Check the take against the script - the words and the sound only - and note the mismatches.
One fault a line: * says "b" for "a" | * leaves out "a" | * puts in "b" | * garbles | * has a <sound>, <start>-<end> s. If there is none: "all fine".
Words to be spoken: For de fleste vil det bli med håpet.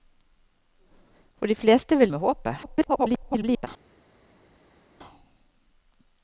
* leaves out "det bli"
* garbles